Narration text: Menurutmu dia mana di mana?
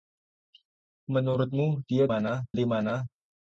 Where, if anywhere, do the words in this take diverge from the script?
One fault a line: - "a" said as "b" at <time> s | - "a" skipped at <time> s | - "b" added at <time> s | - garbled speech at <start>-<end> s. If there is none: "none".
none